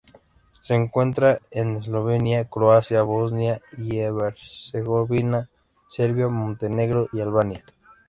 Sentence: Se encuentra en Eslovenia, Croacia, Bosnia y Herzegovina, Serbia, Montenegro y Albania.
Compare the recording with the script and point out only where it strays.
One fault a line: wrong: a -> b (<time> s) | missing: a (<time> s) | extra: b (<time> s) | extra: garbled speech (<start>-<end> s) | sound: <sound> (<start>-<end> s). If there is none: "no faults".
no faults